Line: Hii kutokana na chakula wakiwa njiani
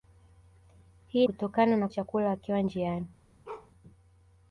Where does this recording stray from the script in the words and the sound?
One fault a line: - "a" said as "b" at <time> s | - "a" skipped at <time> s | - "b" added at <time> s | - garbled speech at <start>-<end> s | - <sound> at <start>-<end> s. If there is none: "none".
- bark at 3.4-3.7 s